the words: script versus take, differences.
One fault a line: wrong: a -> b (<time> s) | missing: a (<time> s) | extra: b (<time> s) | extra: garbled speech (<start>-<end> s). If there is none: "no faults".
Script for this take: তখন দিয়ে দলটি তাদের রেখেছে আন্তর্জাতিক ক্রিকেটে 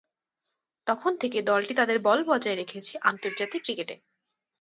wrong: দিয়ে -> থেকে (1.2 s)
extra: বল বজায় (2.0 s)